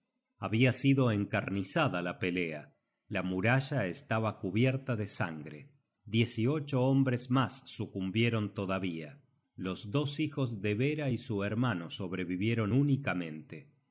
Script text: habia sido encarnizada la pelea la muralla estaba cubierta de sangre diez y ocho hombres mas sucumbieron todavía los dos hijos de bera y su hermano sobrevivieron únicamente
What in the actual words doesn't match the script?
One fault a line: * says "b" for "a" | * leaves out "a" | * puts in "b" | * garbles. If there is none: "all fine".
all fine